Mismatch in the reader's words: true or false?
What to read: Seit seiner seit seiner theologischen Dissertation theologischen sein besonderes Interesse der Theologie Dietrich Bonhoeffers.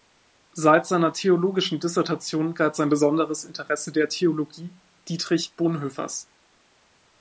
true